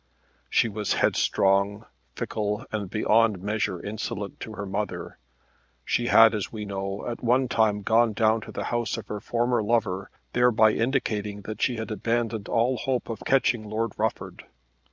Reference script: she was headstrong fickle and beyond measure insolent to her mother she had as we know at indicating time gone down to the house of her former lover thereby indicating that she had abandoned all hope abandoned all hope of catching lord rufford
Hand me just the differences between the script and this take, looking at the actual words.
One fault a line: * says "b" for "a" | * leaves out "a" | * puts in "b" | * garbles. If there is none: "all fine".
* says "one" for "indicating"
* leaves out "abandoned all hope"